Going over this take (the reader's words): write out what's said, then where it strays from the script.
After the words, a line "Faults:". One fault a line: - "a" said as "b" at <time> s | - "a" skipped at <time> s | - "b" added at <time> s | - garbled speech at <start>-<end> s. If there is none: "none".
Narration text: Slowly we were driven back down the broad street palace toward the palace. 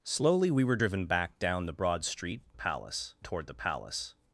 Slowly we were driven back down the broad street palace toward the palace.
Faults:
none